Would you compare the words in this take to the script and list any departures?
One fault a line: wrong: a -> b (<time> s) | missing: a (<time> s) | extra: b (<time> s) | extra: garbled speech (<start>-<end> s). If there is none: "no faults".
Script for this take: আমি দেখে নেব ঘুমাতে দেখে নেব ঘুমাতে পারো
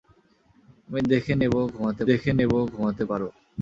no faults